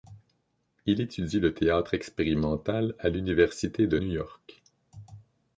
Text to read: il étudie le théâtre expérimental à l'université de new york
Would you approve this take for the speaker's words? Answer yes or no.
yes